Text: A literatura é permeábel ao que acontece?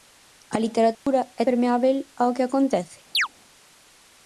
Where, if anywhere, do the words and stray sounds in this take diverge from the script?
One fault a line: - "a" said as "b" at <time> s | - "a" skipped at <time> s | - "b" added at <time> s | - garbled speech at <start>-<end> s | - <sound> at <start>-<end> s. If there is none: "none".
- dropout at 0.9-1.1 s
- chirp at 3.1-3.3 s